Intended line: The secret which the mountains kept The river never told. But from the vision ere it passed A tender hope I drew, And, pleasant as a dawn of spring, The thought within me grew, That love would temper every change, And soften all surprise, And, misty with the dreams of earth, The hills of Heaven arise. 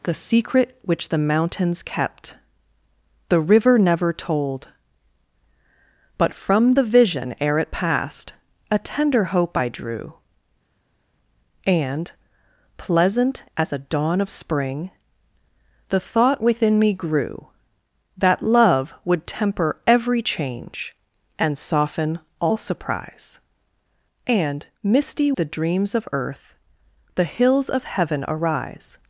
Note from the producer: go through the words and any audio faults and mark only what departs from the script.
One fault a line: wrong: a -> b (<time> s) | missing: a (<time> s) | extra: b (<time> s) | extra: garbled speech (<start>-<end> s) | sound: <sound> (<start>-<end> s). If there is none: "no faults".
missing: with (25.3 s)